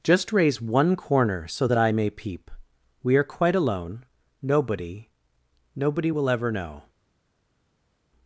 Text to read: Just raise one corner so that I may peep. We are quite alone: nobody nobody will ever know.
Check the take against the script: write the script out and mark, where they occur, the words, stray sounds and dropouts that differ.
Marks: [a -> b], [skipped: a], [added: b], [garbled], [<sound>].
Just raise one corner so that I may peep. We are quite alone: nobody nobody will ever know.